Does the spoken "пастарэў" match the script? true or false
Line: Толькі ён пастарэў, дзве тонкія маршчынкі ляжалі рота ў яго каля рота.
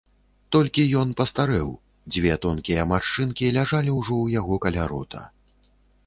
true